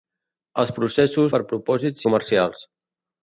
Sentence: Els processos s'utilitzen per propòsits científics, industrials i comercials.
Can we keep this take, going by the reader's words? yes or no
no